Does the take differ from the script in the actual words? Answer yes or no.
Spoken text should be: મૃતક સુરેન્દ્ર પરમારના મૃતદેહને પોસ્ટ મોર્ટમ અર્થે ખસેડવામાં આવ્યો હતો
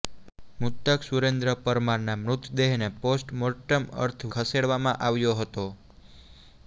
no